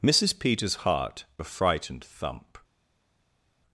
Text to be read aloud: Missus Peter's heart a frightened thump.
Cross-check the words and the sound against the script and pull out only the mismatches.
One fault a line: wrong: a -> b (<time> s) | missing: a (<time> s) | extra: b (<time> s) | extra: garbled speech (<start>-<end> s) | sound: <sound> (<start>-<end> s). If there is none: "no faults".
no faults